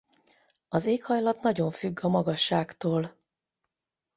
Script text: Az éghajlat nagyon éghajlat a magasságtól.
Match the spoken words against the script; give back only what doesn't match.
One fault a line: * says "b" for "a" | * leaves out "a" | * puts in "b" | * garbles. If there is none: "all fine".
* says "függ" for "éghajlat"